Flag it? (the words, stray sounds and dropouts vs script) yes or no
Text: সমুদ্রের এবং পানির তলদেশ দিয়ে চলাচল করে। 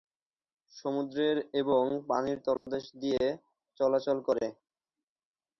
yes